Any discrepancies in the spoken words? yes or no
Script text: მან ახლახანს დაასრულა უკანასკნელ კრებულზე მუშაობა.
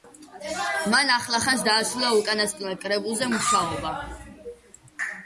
no